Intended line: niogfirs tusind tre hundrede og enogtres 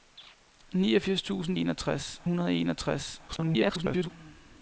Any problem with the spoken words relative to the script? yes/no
yes